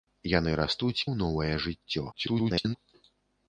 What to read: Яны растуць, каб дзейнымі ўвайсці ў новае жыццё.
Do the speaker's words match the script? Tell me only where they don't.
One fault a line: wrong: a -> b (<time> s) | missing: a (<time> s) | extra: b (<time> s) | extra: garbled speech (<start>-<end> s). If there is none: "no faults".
missing: каб дзейнымі ўвайсці (1.1 s)
extra: garbled speech (2.1-2.8 s)